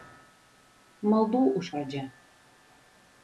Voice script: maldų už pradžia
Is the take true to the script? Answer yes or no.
yes